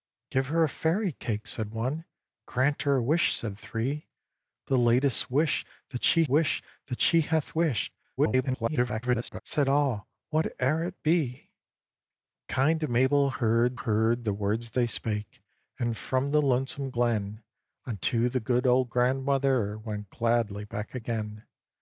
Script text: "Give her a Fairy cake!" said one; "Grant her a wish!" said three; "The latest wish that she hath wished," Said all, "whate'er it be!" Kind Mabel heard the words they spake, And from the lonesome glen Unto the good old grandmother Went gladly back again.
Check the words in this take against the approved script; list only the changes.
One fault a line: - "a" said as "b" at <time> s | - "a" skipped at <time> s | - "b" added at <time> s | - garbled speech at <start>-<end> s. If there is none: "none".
- "wish that she" added at 6.3 s
- garbled speech at 8.2-9.4 s
- "heard" added at 13.7 s